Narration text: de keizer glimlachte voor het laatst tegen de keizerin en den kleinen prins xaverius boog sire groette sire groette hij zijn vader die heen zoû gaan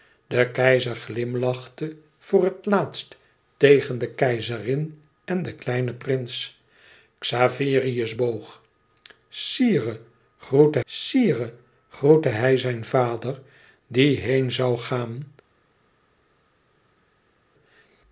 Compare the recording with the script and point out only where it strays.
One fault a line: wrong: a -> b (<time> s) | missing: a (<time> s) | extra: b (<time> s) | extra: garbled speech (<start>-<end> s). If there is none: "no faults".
no faults